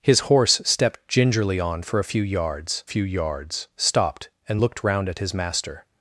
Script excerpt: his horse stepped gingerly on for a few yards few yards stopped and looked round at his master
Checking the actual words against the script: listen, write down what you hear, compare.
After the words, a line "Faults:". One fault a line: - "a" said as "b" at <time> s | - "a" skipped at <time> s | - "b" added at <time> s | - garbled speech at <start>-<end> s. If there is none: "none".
his horse stepped gingerly on for a few yards few yards stopped and looked round at his master
Faults:
none